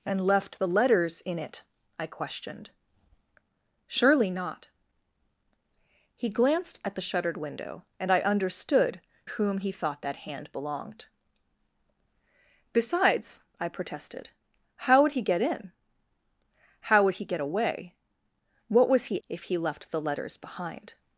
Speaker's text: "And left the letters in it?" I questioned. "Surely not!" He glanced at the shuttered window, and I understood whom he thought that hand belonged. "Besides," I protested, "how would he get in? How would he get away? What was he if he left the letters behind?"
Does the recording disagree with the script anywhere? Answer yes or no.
no